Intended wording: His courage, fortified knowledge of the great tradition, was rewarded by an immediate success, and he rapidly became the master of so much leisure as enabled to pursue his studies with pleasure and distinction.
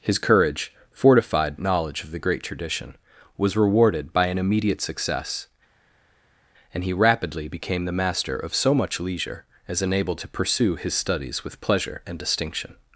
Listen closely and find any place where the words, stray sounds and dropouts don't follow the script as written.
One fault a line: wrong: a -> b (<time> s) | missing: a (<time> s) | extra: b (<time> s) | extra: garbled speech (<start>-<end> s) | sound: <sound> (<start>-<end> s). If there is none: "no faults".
no faults